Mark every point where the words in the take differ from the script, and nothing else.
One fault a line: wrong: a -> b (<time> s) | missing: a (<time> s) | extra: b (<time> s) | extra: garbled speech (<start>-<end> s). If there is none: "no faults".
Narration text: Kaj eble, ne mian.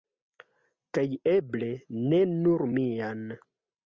extra: nur (2.3 s)